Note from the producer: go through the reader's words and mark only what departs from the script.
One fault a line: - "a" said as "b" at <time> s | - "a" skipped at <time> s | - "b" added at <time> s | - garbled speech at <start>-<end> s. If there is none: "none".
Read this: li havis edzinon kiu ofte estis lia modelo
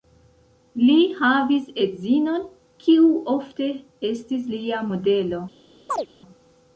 none